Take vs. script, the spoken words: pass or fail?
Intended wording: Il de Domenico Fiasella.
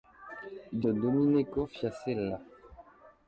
pass